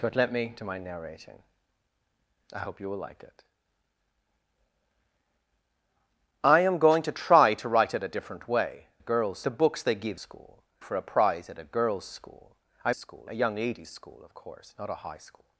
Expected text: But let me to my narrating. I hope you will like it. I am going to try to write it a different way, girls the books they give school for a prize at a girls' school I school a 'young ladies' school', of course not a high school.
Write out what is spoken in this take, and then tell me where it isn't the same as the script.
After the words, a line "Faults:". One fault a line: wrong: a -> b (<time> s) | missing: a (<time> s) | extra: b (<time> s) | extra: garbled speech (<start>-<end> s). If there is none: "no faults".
But let me to my narrating. I hope you will like it. I am going to try to write it a different way, girls the books they give school for a prize at a girls' school I school a 'young ladies' school', of course not a high school.
Faults:
no faults